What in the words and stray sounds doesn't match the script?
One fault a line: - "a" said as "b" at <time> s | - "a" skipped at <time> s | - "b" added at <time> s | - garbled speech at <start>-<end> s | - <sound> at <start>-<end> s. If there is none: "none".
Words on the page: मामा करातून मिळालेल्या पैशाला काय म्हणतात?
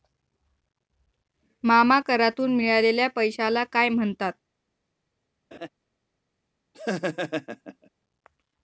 - laugh at 5.5-5.7 s
- laugh at 6.7-7.9 s